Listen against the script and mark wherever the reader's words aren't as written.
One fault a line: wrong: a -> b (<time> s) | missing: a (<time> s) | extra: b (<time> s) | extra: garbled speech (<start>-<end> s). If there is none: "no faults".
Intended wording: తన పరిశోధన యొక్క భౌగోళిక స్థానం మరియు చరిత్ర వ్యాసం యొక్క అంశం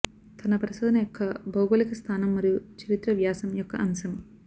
no faults